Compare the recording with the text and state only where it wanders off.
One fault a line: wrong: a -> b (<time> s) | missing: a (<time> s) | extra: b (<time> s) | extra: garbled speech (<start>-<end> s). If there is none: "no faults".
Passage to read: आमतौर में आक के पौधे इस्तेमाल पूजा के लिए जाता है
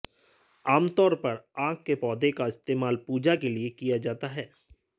wrong: में -> पर (1.1 s)
extra: का (2.3 s)
extra: किया (3.7 s)